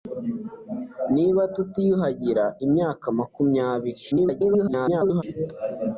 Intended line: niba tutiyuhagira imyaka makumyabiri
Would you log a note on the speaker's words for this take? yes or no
yes